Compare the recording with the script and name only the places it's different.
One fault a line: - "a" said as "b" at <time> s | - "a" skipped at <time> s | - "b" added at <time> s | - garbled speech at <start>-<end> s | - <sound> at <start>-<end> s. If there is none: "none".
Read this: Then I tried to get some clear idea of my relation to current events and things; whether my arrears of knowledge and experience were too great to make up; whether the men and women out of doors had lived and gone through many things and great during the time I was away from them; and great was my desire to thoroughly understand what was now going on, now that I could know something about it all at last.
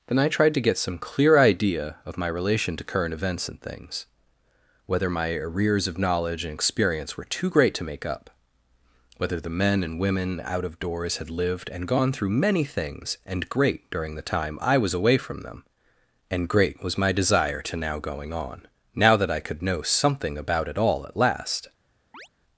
- "thoroughly understand what was" skipped at 17.8 s
- chirp at 22.1-22.3 s